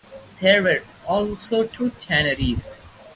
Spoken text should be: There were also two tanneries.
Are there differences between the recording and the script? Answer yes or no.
no